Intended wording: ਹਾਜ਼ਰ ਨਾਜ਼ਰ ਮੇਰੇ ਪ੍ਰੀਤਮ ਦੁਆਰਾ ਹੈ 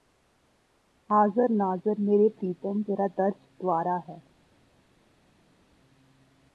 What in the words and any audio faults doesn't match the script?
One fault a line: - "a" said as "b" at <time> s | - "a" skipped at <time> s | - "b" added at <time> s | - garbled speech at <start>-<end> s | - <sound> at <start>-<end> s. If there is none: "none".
- "ਤੇਰਾ ਦਰਸ" added at 2.8 s